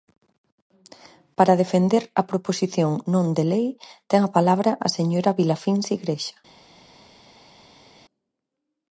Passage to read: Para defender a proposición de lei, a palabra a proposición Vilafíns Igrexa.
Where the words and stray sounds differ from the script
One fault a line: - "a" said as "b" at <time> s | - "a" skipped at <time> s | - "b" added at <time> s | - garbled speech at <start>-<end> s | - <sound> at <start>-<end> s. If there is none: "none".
- "non" added at 3.1 s
- "ten" added at 4.1 s
- "proposición" said as "señora" at 5.0 s